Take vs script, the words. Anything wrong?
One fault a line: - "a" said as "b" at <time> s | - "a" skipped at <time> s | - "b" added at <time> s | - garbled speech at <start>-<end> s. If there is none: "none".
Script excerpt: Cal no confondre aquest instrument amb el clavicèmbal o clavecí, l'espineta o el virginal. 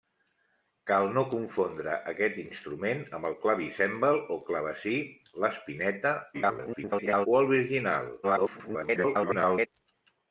- garbled speech at 6.3-7.3 s
- garbled speech at 8.2-9.7 s